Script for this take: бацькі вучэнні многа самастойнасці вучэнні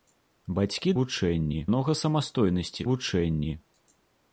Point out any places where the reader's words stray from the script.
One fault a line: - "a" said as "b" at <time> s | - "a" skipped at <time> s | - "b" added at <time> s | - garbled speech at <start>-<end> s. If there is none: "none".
none